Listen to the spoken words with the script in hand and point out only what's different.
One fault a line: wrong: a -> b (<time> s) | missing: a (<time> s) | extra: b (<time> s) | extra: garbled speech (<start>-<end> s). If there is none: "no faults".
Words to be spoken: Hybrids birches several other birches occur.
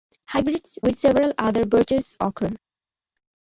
wrong: birches -> with (0.8 s)